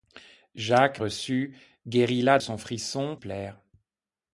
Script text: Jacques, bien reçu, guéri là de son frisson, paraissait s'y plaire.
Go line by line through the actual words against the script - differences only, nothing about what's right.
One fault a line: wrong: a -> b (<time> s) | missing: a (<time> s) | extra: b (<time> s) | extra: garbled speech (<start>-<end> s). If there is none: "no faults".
missing: bien (1.0 s)
missing: de (2.4 s)
missing: paraissait s'y (3.1 s)